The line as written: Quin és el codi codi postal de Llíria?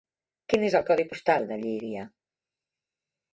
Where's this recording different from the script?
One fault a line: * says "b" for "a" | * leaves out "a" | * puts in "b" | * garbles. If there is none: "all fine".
* leaves out "codi"